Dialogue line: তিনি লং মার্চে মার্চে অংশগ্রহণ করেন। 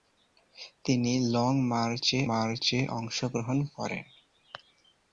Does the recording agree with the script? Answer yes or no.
yes